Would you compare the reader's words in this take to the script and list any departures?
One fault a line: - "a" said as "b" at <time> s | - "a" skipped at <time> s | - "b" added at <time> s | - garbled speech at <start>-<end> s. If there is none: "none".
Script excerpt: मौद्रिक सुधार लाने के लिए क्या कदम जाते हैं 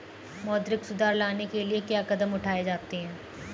- "उठाए" added at 2.3 s